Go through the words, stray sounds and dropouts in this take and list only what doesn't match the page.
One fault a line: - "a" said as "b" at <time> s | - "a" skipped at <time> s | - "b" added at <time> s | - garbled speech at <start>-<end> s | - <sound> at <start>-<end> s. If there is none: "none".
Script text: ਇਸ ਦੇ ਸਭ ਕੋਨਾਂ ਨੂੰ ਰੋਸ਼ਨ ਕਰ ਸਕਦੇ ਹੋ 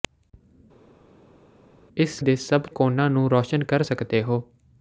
none